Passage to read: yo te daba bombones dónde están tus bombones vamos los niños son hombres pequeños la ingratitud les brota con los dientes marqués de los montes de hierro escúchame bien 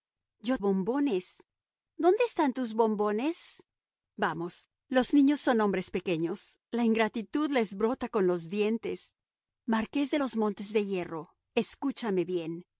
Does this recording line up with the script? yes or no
no